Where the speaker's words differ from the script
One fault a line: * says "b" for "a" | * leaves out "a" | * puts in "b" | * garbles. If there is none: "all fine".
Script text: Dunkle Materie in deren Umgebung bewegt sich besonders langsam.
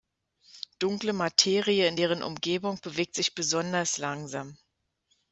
all fine